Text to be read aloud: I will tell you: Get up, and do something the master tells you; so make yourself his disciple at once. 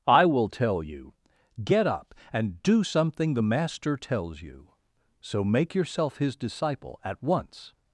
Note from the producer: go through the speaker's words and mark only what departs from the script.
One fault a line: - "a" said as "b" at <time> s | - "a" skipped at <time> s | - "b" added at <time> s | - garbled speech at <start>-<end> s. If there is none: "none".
none